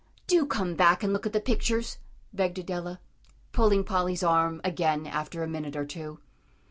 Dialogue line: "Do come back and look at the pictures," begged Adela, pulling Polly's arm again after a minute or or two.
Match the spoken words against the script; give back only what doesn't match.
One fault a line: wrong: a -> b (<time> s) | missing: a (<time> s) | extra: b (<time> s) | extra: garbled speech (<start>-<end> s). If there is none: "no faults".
missing: or (5.9 s)